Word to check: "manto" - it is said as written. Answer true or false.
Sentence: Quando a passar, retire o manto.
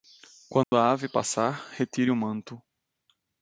true